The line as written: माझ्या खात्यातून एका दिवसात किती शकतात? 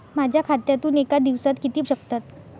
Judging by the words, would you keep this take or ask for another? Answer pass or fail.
pass